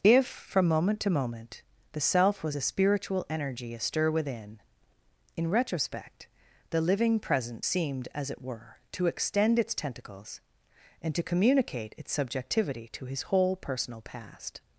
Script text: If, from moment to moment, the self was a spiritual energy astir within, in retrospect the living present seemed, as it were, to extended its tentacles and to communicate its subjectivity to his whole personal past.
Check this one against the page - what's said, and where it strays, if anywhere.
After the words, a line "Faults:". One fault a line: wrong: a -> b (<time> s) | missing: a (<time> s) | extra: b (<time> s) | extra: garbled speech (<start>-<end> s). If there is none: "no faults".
If, from moment to moment, the self was a spiritual energy astir within, in retrospect the living present seemed, as it were, to extend its tentacles and to communicate its subjectivity to his whole personal past.
Faults:
wrong: extended -> extend (9.1 s)